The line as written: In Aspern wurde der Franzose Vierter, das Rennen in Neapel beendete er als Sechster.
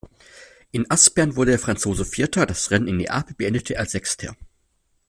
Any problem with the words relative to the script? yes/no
no